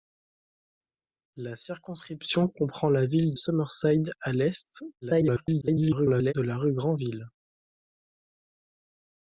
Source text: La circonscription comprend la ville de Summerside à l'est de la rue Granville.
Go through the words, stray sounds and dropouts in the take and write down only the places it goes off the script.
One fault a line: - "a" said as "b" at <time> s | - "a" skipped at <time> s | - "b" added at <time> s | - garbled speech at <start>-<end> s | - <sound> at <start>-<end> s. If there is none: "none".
- "de" skipped at 3.4 s
- garbled speech at 5.0-6.3 s